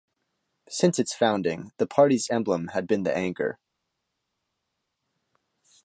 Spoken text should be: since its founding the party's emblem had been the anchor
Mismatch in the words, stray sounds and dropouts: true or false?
false